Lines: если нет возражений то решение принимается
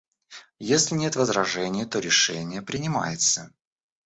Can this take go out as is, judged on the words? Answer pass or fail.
pass